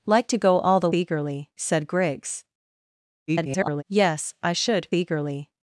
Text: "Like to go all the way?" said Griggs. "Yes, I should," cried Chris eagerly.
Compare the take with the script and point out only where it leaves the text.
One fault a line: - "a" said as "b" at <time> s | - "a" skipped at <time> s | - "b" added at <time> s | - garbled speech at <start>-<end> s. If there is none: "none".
- "way" said as "eagerly" at 0.9 s
- garbled speech at 3.3-3.8 s
- "cried Chris" skipped at 4.9 s